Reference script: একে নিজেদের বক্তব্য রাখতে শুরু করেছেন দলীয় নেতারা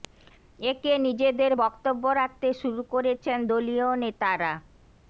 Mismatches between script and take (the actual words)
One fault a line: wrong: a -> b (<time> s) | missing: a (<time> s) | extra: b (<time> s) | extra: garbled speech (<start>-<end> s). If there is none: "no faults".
no faults